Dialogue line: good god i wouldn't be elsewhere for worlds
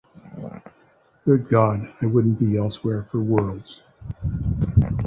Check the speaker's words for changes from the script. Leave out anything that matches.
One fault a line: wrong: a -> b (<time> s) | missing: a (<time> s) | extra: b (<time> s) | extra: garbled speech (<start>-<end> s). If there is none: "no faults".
no faults